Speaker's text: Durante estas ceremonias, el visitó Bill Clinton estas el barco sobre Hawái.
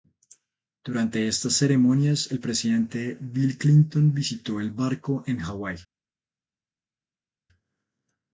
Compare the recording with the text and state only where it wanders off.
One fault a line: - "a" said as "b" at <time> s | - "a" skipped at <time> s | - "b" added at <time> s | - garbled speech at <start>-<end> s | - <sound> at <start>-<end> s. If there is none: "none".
- "visitó" said as "presidente" at 2.4 s
- "estas" said as "visitó" at 4.1 s
- "sobre" said as "en" at 5.3 s